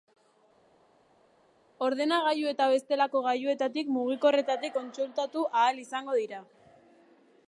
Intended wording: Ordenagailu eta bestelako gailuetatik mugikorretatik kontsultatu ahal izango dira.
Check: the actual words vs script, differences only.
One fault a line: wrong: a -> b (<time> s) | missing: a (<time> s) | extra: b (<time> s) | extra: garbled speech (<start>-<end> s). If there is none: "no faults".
no faults